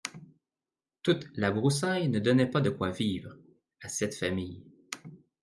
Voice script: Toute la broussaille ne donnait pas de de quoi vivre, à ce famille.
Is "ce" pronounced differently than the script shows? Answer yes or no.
yes